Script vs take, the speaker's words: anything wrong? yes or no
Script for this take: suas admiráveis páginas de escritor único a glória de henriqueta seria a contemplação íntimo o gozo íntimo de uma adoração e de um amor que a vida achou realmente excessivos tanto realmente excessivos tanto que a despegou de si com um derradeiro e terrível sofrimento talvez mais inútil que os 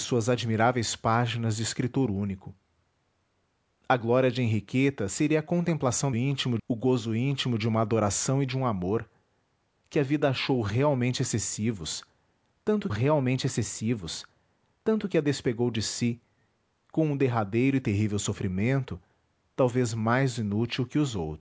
no